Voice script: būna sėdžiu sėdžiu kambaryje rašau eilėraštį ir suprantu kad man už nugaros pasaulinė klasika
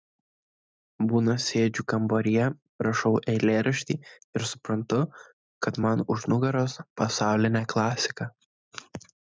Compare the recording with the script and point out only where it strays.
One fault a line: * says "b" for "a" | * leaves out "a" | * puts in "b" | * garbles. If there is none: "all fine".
* leaves out "sėdžiu"